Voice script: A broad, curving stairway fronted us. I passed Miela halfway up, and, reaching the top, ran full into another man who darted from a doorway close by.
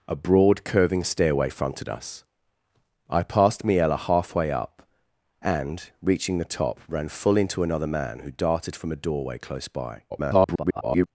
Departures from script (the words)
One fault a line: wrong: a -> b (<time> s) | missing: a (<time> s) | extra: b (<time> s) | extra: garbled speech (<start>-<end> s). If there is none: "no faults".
extra: garbled speech (10.1-11.1 s)